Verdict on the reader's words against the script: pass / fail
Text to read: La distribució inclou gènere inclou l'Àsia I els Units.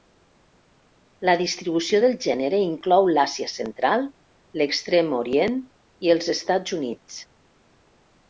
fail